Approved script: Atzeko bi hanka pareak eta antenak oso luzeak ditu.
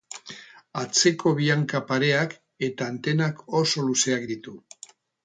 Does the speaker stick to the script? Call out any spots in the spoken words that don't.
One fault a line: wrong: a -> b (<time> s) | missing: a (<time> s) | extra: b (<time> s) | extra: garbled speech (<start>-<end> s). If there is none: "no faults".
no faults